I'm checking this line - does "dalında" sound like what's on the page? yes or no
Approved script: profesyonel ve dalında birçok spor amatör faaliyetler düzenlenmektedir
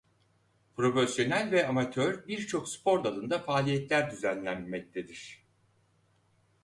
no